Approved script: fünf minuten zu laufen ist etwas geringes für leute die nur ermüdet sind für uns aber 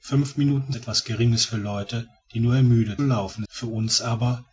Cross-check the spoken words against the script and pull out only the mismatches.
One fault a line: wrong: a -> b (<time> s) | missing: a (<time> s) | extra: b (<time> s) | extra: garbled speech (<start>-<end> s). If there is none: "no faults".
missing: zu laufen ist (0.7 s)
wrong: sind -> laufen (3.0 s)